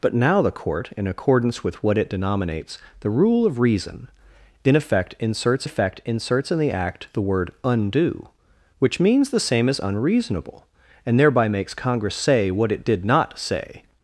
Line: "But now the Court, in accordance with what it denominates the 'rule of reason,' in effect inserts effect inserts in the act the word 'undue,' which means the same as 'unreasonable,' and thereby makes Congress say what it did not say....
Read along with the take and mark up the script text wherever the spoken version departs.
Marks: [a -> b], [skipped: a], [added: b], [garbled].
"But now the Court, in accordance with what it denominates the 'rule of reason,' in effect inserts effect inserts in the act the word 'undue,' which means the same as 'unreasonable,' and thereby makes Congress say what it did not say....